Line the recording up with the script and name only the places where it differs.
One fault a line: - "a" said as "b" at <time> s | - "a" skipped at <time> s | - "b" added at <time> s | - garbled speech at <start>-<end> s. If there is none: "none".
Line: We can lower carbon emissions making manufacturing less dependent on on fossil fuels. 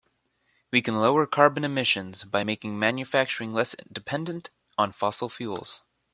- "by" added at 2.2 s
- "on" skipped at 4.9 s